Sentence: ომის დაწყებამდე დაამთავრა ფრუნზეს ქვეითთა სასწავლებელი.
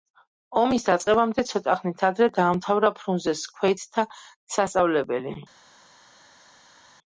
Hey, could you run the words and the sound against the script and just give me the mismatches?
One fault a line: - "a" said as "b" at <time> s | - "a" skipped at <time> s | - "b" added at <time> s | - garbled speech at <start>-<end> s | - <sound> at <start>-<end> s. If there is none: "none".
- "ცოტა ხნით ადრე" added at 1.5 s